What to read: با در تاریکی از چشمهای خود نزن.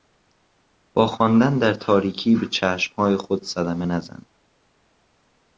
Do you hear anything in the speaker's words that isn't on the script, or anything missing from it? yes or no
yes